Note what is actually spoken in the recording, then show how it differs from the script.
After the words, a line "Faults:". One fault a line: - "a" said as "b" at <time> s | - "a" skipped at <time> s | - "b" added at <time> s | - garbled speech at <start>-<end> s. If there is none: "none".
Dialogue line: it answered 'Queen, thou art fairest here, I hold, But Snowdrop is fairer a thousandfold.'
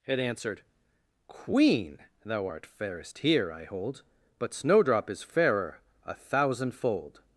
it answered 'Queen, thou art fairest here, I hold, But Snowdrop is fairer a thousandfold.'
Faults:
none